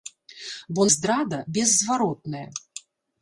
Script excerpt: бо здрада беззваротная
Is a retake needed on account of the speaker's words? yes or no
no